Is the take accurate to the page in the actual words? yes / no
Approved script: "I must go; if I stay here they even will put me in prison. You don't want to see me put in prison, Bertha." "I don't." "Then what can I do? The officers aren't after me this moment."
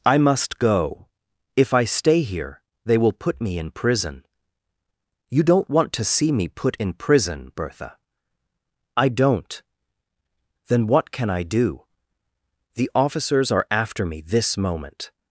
no